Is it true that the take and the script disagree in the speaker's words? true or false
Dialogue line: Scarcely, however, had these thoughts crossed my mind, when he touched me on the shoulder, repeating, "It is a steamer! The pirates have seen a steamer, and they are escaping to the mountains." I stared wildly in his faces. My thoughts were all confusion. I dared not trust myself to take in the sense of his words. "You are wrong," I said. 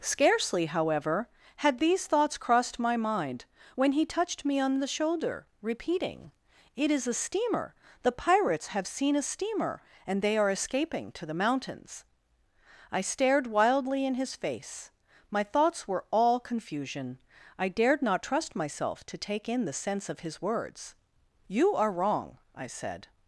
true